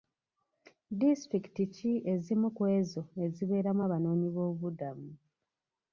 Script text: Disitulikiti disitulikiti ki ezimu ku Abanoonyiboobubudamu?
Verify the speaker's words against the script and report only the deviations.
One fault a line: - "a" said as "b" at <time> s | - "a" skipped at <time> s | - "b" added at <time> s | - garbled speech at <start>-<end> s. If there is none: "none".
- "disitulikiti" skipped at 1.6 s
- "ezo ezibeeramu" added at 2.8 s